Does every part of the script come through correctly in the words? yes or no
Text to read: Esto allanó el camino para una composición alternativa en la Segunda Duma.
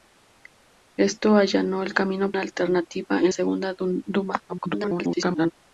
no